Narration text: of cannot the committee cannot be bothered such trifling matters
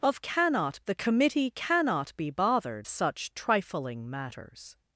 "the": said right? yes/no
yes